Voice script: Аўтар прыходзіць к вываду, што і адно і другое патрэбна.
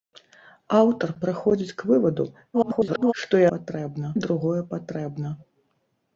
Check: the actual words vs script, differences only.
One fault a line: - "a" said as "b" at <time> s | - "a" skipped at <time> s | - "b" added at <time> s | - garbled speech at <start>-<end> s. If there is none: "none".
- garbled speech at 2.5-3.1 s
- "адно" said as "патрэбна" at 3.5 s